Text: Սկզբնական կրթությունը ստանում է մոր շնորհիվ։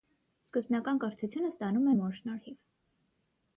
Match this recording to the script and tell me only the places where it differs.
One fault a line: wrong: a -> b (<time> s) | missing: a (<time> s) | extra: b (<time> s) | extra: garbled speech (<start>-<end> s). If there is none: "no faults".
no faults